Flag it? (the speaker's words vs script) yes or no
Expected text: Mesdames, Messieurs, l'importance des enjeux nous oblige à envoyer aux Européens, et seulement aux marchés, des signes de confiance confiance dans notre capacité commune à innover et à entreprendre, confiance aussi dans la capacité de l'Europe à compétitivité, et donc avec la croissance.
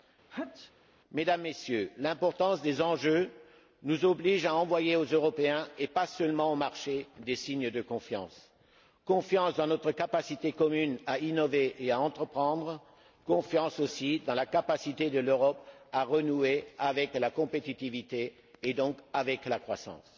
yes